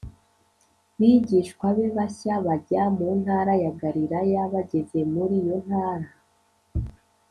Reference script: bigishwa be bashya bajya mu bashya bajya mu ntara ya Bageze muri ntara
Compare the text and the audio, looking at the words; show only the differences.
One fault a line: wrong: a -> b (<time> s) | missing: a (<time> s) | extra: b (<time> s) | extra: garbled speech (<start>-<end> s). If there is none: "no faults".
missing: bashya bajya mu (3.1 s)
extra: Galilaya (3.8 s)
extra: iyo (5.4 s)